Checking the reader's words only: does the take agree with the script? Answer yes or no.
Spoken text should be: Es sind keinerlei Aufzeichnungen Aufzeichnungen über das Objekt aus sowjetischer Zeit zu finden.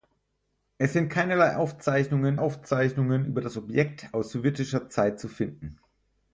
yes